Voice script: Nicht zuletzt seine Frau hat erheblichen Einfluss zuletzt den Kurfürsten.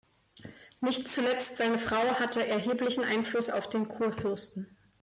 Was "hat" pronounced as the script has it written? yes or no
no